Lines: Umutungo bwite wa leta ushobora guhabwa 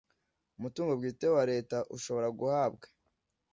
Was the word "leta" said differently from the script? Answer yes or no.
no